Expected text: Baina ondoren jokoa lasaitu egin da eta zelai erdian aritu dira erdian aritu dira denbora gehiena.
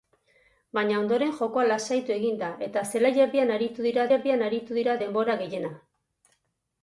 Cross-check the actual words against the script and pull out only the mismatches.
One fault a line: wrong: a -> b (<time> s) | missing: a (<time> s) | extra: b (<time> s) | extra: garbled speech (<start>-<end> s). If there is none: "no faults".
no faults